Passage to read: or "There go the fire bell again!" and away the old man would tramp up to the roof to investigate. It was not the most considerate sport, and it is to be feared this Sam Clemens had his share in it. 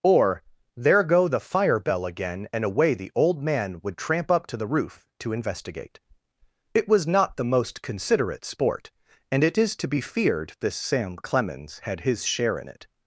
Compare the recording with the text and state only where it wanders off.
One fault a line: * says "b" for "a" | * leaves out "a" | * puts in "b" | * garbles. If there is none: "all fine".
all fine